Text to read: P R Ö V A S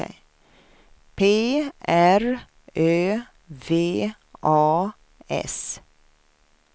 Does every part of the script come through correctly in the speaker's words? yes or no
yes